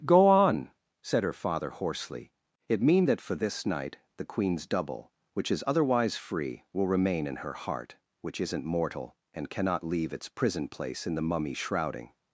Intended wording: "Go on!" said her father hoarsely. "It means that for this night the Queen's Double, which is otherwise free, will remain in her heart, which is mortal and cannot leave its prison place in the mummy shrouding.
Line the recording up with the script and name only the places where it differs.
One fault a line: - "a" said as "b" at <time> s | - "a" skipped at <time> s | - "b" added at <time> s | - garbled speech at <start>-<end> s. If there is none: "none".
- "means" said as "mean" at 2.8 s
- "is" said as "isn't" at 8.4 s